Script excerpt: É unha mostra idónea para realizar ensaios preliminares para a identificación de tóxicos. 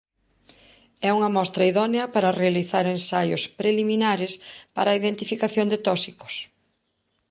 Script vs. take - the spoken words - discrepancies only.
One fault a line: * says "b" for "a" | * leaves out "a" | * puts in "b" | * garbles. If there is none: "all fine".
all fine